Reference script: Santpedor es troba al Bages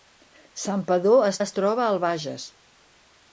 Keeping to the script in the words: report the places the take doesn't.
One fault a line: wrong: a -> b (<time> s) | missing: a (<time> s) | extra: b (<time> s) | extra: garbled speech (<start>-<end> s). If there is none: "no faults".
extra: es (1.4 s)